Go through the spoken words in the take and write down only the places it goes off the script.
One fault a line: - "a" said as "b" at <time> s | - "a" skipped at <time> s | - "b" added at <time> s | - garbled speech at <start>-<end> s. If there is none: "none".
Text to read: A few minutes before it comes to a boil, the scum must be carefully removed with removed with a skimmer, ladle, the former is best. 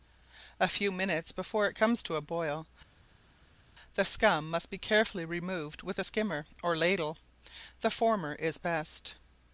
- "removed with" skipped at 6.0 s
- "or" added at 6.6 s